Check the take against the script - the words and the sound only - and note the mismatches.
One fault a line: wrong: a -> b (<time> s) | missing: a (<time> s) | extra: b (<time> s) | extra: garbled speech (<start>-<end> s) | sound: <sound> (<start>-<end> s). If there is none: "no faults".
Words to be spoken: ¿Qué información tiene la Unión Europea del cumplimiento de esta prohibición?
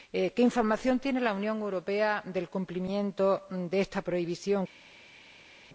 no faults